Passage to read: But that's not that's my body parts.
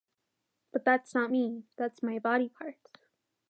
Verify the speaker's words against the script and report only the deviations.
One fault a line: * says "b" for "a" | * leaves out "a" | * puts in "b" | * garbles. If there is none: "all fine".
* puts in "me"